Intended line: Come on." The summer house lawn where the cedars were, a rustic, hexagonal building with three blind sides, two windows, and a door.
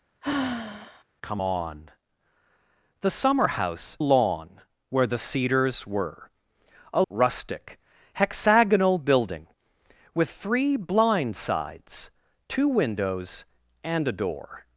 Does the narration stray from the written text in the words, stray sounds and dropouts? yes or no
yes